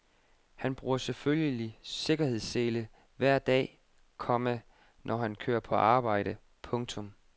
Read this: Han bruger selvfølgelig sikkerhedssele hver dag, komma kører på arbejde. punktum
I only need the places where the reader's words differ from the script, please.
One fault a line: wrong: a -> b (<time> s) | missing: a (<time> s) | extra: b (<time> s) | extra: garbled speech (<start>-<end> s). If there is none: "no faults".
extra: når han (5.0 s)